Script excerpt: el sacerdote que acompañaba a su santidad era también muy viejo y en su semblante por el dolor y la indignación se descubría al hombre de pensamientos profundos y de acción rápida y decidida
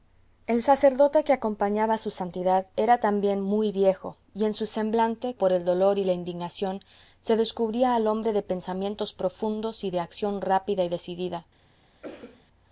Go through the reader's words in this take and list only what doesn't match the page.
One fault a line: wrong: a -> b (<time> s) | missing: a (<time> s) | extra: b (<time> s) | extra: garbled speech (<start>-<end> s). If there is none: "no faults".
no faults